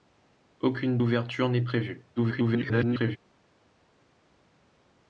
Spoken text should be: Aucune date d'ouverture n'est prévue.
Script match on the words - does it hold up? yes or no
no